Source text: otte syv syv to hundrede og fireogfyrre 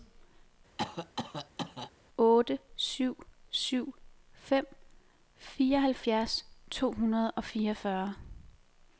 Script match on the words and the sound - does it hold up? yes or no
no